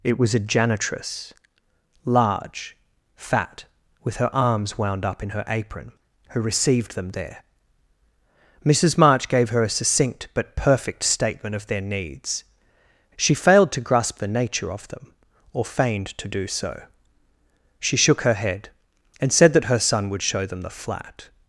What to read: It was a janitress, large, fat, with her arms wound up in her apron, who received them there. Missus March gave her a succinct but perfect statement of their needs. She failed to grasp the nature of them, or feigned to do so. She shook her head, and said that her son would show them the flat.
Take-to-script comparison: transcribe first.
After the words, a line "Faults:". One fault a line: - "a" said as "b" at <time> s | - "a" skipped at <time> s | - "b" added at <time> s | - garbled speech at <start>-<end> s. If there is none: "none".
It was a janitress, large, fat, with her arms wound up in her apron, who received them there. Missus March gave her a succinct but perfect statement of their needs. She failed to grasp the nature of them, or feigned to do so. She shook her head, and said that her son would show them the flat.
Faults:
none